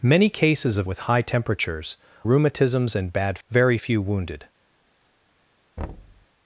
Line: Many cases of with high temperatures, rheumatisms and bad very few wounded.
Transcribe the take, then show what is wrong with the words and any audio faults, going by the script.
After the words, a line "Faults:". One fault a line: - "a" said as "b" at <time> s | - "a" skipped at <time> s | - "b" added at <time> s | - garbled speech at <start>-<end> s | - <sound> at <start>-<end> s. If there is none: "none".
Many cases of with high temperatures, rheumatisms and bad very few wounded.
Faults:
- thud at 5.8-6.3 s